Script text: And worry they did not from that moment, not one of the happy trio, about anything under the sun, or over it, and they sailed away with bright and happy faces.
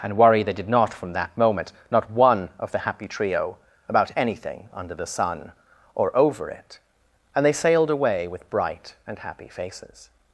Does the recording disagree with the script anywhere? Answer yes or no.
no